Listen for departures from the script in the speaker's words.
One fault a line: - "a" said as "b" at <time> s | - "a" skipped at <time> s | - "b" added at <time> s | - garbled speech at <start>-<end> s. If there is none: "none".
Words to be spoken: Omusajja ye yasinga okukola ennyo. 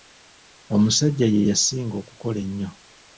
none